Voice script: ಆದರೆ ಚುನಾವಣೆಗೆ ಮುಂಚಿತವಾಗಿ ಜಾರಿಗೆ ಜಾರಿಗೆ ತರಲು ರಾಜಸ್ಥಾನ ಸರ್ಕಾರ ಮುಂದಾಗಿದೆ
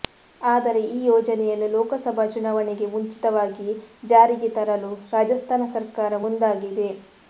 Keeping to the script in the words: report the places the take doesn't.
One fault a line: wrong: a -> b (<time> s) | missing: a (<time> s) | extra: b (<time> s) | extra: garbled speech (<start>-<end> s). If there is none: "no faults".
extra: ಈ ಯೋಜನೆಯನ್ನು ಲೋಕಸಭಾ (0.9 s)
missing: ಜಾರಿಗೆ (4.5 s)